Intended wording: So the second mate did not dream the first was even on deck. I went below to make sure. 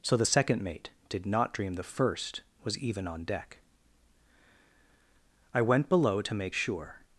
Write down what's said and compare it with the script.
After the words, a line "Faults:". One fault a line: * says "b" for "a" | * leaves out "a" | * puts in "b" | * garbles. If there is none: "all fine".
So the second mate did not dream the first was even on deck. I went below to make sure.
Faults:
all fine